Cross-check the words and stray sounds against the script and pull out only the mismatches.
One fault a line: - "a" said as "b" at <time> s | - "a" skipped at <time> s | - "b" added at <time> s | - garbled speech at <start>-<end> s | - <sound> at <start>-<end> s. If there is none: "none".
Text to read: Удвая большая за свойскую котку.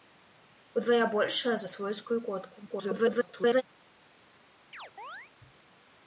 - garbled speech at 2.7-3.6 s
- chirp at 4.7-5.3 s